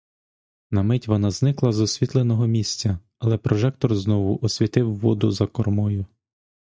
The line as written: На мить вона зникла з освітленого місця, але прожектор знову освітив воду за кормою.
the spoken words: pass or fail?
pass